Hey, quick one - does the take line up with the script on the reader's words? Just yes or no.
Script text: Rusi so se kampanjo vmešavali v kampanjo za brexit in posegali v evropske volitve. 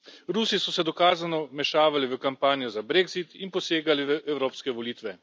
no